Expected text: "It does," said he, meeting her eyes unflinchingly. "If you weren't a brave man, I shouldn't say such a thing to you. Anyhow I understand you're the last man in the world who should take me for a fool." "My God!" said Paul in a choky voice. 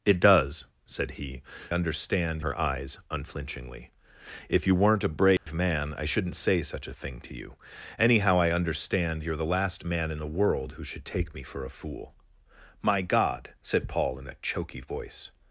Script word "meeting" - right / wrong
wrong